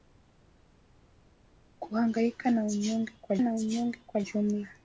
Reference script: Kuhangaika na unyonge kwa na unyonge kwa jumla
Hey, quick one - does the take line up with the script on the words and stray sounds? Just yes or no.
yes